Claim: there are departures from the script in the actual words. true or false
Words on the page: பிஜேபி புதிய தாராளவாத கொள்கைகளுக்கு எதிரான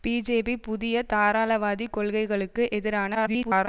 true